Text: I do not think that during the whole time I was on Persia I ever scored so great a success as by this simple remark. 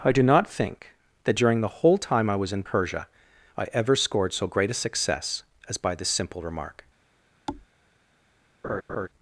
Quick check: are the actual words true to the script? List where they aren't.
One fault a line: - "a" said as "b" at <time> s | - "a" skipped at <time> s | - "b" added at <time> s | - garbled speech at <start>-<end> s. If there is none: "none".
- "on" said as "in" at 2.5 s